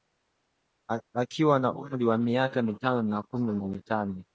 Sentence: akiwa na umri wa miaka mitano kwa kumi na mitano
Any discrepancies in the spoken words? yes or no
yes